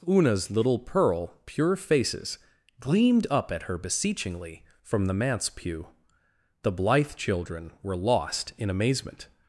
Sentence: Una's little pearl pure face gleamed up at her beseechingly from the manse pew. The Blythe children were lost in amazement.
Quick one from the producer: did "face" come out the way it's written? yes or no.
no